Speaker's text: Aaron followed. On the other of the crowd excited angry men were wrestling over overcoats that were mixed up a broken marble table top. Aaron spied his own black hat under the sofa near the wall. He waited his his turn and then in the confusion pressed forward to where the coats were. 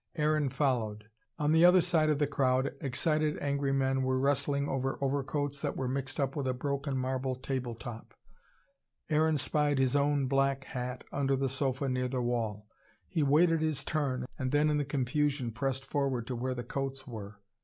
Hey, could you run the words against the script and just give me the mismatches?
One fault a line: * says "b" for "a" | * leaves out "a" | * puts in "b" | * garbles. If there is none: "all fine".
* puts in "side"
* puts in "with"
* leaves out "his"